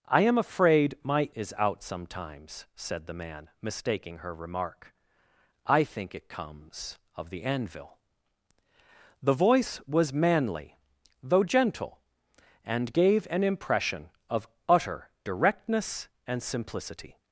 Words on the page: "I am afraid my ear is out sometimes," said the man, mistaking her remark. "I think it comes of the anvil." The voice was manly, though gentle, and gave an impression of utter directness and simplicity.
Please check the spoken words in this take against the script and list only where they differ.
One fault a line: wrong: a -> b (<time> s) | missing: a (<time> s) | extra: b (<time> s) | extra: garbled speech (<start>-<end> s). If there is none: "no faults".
missing: ear (1.3 s)